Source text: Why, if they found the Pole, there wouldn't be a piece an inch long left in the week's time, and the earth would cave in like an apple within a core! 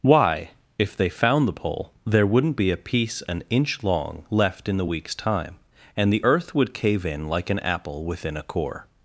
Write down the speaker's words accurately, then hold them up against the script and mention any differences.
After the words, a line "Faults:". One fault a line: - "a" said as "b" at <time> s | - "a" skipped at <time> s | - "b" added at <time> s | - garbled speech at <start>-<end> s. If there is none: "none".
Why, if they found the Pole, there wouldn't be a piece an inch long left in the week's time, and the earth would cave in like an apple within a core!
Faults:
none